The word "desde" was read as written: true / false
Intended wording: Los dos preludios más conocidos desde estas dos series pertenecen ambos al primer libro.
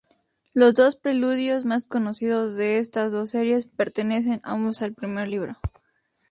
false